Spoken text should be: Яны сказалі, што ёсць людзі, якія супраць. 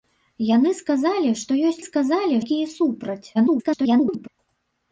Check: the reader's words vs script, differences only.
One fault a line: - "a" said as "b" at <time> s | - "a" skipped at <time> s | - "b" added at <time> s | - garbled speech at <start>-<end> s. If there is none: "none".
- "людзі" said as "сказалі" at 1.8 s
- garbled speech at 3.3-4.3 s